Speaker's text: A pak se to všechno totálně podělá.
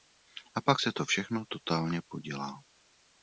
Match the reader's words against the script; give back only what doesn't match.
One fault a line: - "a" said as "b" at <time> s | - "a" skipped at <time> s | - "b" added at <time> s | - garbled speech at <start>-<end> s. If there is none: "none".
none